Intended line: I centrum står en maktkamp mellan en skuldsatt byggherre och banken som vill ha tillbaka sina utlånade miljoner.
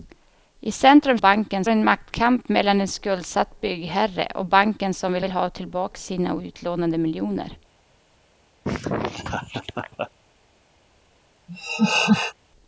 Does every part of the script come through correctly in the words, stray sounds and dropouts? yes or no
no